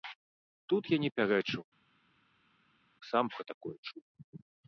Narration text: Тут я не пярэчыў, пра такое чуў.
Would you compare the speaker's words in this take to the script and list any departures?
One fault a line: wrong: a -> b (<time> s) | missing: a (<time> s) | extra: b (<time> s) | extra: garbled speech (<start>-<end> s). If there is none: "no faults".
extra: сам (3.1 s)